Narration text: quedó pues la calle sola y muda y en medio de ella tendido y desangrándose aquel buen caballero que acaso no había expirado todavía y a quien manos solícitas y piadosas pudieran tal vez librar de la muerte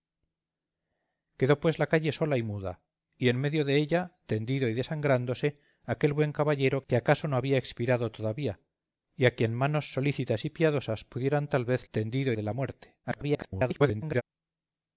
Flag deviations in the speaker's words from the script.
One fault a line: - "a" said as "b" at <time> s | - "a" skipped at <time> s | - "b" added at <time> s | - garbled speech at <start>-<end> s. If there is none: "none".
- "librar" said as "tendido" at 11.9 s
- garbled speech at 13.0-14.2 s